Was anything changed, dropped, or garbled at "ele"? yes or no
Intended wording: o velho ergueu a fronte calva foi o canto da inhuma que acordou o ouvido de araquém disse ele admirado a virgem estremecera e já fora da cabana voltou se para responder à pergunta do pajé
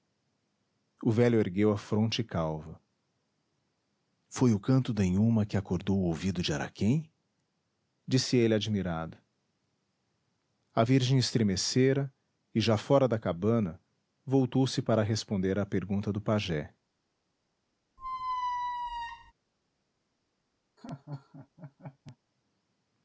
no